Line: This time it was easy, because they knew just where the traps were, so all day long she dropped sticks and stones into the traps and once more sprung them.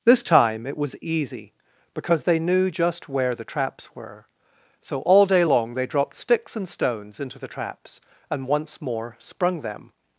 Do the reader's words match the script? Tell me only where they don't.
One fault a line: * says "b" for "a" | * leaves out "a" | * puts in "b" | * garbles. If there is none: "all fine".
* says "they" for "she"